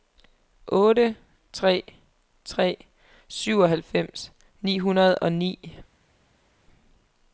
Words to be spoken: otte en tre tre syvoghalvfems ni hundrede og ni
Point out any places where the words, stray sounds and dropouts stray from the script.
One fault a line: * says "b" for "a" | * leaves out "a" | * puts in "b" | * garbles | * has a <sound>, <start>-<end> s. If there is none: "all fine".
* leaves out "en"